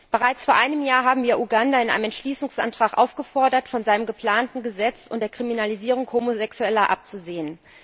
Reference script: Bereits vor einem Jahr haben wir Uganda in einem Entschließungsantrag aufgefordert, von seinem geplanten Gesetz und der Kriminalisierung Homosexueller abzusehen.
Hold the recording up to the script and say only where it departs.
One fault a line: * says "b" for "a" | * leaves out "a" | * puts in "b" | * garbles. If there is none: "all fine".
all fine